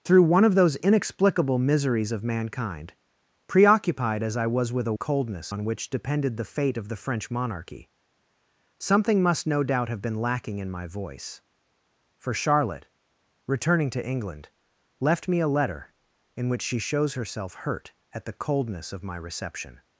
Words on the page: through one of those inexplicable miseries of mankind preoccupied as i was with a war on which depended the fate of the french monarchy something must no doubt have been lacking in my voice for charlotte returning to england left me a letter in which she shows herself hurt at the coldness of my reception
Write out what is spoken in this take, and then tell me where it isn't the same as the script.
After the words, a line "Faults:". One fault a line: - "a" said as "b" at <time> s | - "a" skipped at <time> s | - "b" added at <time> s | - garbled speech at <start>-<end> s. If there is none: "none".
through one of those inexplicable miseries of mankind preoccupied as i was with a coldness on which depended the fate of the french monarchy something must no doubt have been lacking in my voice for charlotte returning to england left me a letter in which she shows herself hurt at the coldness of my reception
Faults:
- "war" said as "coldness" at 4.9 s